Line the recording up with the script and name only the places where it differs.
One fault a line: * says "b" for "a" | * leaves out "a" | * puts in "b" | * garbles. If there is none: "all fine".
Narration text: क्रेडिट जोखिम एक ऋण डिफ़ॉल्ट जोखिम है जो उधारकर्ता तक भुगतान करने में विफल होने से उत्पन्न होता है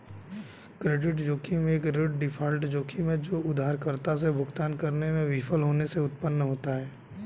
* says "से" for "तक"